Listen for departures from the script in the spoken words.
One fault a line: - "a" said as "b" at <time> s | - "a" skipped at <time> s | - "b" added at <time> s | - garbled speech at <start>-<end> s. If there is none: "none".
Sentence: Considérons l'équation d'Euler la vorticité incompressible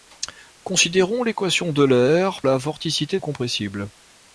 none